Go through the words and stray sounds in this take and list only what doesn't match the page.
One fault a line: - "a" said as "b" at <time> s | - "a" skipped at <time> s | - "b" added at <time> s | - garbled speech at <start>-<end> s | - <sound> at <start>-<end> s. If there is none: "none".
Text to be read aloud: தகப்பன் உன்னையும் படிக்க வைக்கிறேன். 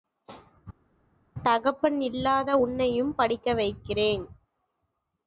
- "இல்லாத" added at 2.0 s